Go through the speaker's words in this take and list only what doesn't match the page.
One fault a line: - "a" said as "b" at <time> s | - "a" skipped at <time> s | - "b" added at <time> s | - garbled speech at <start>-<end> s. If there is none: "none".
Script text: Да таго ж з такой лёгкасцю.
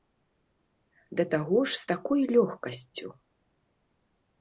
none